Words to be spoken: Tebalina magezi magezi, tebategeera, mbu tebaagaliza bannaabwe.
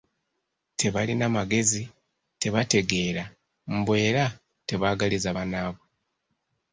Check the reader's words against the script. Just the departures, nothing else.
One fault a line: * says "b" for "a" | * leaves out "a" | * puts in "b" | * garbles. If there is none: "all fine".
* leaves out "magezi"
* puts in "era"